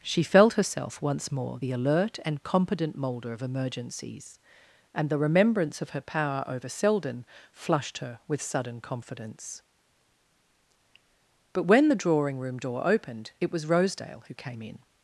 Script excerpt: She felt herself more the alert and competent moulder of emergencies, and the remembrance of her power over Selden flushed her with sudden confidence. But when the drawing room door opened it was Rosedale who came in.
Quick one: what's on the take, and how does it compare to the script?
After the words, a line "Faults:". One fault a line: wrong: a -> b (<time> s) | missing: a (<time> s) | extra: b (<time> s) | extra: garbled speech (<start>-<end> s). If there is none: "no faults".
She felt herself once more the alert and competent moulder of emergencies, and the remembrance of her power over Selden flushed her with sudden confidence. But when the drawing room door opened it was Rosedale who came in.
Faults:
extra: once (1.0 s)